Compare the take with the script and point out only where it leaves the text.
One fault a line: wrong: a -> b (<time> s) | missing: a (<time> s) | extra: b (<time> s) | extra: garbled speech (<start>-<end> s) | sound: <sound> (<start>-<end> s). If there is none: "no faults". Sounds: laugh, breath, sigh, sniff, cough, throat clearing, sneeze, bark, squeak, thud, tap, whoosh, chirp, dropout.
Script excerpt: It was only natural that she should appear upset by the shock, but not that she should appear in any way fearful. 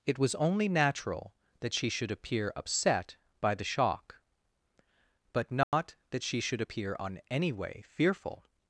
sound: dropout (5.6-5.7 s)
wrong: in -> on (7.0 s)